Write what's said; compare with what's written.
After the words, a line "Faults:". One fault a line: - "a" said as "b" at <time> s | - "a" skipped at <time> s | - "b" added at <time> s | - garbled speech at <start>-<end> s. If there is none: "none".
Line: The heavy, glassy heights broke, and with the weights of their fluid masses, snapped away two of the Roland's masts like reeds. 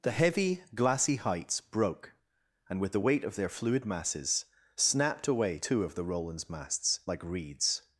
The heavy, glassy heights broke, and with the weight of their fluid masses, snapped away two of the Roland's masts like reeds.
Faults:
- "weights" said as "weight" at 3.0 s